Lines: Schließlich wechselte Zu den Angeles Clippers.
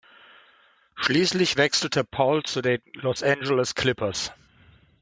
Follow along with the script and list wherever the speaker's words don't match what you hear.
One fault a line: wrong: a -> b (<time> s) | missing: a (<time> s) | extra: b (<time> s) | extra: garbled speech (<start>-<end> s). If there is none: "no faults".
extra: Paul (2.0 s)
extra: Los (2.9 s)